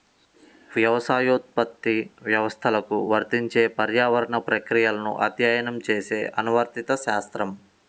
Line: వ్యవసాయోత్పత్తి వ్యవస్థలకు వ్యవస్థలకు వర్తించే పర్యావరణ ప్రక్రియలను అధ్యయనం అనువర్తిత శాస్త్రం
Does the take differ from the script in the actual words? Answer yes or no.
yes